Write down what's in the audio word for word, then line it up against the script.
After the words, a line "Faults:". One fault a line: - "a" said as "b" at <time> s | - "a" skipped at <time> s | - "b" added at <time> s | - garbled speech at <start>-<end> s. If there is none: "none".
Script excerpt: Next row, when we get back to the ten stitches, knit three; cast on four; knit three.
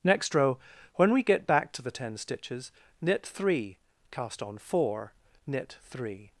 Next row, when we get back to the ten stitches, knit three; cast on four; knit three.
Faults:
none